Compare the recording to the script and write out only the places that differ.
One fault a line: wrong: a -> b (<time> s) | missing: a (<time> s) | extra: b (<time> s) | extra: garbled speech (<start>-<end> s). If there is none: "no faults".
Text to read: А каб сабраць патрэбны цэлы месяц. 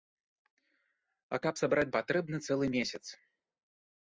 no faults